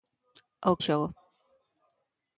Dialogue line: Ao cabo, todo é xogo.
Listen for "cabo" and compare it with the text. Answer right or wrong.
wrong